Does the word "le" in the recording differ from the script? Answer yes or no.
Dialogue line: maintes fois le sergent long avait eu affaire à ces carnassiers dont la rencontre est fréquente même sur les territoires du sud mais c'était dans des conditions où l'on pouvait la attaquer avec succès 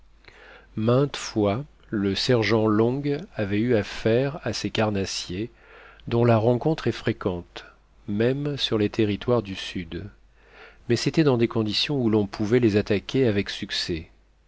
no